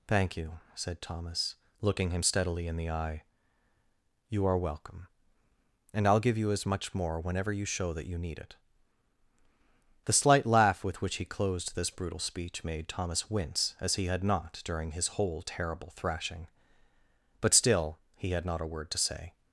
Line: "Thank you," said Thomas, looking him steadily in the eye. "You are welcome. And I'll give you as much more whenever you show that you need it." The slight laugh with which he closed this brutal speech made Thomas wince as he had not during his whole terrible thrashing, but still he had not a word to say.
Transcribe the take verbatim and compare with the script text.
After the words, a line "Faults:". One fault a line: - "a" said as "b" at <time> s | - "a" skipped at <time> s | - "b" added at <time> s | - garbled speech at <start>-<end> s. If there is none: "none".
"Thank you," said Thomas, looking him steadily in the eye. "You are welcome. And I'll give you as much more whenever you show that you need it." The slight laugh with which he closed this brutal speech made Thomas wince as he had not during his whole terrible thrashing, but still he had not a word to say.
Faults:
none